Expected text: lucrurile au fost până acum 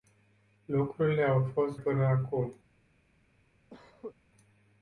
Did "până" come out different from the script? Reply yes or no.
no